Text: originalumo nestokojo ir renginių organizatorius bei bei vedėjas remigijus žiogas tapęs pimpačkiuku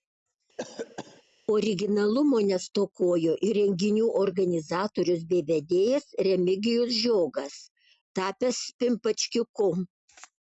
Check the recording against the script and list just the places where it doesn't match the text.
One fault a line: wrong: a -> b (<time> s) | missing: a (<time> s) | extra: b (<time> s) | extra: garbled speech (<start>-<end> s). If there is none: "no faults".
missing: bei (5.5 s)